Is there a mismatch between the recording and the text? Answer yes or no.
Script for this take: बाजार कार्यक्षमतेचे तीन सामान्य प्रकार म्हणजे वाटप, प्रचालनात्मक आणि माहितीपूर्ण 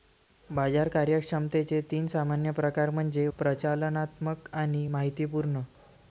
yes